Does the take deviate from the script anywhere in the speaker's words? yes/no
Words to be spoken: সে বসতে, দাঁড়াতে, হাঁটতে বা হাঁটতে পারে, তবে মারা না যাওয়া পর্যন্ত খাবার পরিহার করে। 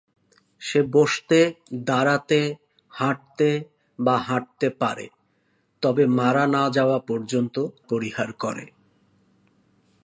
yes